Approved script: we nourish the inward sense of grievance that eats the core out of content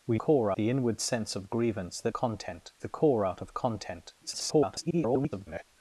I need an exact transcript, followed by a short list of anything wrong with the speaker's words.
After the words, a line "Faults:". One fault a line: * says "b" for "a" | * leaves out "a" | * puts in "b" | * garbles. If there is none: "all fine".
we core the inward sense of grievance that content the core out of content [garbled]
Faults:
* says "core" for "nourish"
* says "content" for "eats"
* garbles